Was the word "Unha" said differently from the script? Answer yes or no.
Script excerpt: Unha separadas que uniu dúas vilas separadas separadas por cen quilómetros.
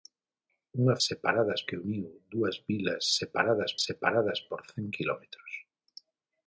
no